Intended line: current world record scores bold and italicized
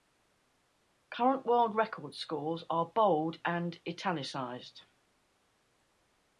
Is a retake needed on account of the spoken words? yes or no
yes